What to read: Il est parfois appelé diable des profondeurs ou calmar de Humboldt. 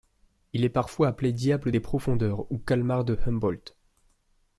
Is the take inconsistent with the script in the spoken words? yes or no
no